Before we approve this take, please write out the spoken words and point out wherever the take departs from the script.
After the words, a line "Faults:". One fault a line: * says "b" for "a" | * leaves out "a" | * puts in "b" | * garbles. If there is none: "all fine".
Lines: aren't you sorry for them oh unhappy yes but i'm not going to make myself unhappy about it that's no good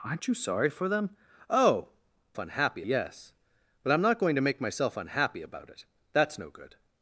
aren't you sorry for them oh unhappy yes but i'm not going to make myself unhappy about it that's no good
Faults:
all fine